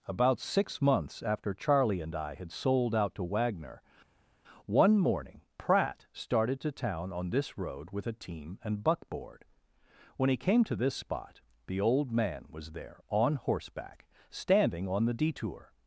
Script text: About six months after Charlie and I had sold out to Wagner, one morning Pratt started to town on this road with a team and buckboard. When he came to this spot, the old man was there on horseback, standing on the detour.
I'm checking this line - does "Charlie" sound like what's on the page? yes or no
yes